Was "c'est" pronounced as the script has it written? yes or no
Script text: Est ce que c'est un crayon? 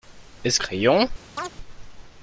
no